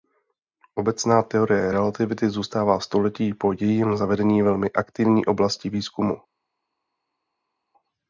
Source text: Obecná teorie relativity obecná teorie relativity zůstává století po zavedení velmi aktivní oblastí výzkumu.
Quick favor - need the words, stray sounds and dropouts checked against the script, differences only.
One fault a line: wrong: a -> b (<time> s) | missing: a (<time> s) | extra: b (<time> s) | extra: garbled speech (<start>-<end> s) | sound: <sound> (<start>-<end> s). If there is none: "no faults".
missing: obecná teorie relativity (2.3 s)
extra: jejím (3.5 s)